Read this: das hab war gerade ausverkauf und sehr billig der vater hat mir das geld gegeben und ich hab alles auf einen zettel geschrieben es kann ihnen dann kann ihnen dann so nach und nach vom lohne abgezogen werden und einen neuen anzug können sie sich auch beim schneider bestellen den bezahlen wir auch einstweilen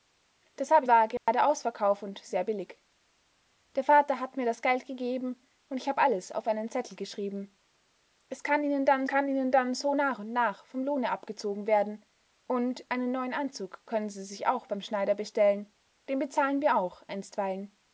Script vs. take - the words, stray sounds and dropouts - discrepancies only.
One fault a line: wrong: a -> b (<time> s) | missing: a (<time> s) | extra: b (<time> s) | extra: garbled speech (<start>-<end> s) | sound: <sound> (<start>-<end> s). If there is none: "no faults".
sound: dropout (1.2-1.3 s)